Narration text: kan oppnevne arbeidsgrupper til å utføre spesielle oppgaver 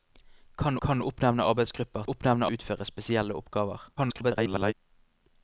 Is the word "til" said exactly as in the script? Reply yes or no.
no